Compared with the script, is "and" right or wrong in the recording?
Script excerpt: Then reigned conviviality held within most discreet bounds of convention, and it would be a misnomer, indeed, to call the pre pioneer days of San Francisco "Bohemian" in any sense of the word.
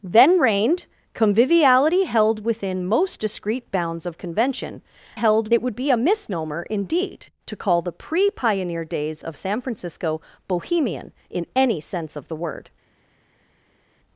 wrong